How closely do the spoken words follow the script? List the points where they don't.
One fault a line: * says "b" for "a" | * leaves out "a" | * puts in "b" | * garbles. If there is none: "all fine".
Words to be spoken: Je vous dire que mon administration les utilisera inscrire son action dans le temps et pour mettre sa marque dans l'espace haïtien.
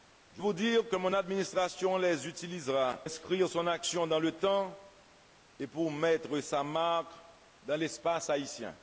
all fine